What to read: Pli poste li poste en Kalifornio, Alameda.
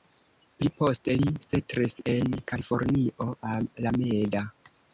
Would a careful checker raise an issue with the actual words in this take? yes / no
yes